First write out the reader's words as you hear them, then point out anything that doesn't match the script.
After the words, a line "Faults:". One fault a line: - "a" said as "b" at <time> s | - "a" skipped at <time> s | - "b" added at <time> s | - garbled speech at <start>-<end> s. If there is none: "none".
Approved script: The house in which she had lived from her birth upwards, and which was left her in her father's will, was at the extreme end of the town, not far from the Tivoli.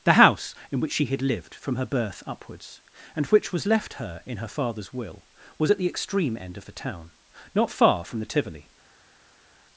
The house in which she had lived from her birth upwards, and which was left her in her father's will, was at the extreme end of the town, not far from the Tivoli.
Faults:
none